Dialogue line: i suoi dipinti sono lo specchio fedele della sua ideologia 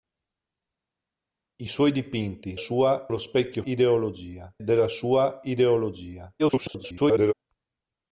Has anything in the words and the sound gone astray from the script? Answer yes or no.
yes